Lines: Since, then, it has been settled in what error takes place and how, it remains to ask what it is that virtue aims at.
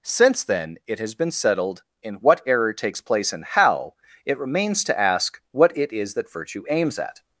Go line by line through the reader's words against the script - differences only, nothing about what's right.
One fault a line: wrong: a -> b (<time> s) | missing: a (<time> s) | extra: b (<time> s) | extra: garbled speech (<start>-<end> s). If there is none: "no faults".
no faults